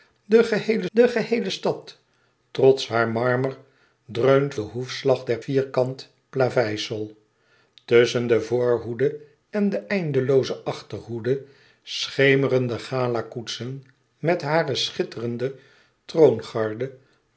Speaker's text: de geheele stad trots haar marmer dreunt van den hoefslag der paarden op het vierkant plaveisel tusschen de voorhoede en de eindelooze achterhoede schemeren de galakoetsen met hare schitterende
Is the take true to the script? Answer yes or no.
no